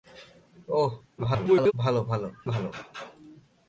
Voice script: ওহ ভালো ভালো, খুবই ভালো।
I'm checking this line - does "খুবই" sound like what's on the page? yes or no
no